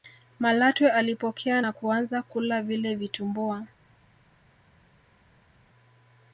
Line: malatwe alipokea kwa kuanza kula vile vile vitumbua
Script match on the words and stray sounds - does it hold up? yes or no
no